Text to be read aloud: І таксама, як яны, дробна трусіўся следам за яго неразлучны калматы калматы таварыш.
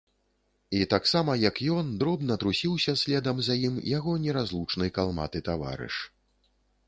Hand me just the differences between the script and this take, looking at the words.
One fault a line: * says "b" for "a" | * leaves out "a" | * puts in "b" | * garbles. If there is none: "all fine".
* says "ён" for "яны"
* puts in "ім"
* leaves out "калматы"